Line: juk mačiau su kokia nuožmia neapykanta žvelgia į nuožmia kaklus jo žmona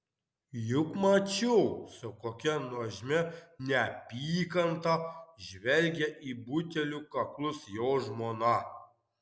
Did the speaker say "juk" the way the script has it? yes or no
yes